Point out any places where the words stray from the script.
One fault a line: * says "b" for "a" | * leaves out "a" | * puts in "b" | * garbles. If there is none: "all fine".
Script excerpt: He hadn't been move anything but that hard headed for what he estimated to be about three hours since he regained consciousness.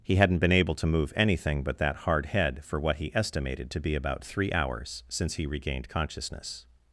* puts in "able to"
* says "head" for "headed"